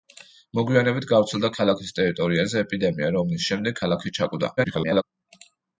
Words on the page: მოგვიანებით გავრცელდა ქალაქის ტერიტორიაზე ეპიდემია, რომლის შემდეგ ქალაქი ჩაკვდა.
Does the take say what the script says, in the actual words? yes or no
no